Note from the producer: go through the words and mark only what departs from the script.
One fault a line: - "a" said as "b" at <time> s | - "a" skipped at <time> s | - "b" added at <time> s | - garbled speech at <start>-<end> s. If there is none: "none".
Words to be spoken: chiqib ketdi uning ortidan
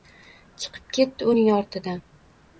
none